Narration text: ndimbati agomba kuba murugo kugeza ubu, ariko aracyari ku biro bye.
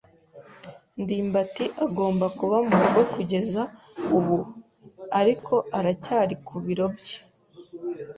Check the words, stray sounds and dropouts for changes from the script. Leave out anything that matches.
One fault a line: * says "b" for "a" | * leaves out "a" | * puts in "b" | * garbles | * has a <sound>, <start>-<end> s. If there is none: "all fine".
* has a dropout, 5.4-5.4 s